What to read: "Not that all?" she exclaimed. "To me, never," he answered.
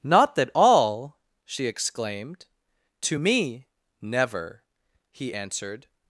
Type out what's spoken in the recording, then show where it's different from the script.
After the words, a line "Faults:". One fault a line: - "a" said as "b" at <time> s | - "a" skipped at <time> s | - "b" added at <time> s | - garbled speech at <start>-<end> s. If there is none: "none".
"Not that all?" she exclaimed. "To me, never," he answered.
Faults:
none